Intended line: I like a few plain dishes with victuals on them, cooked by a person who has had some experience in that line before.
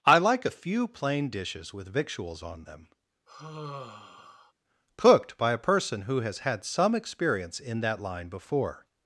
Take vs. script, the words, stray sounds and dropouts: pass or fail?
fail